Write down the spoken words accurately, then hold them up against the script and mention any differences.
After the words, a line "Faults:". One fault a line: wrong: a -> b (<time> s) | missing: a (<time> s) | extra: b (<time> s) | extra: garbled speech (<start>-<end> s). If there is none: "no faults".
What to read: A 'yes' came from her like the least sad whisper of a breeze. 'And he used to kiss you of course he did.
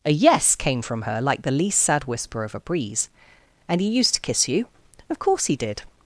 A 'yes' came from her like the least sad whisper of a breeze. 'And he used to kiss you of course he did.
Faults:
no faults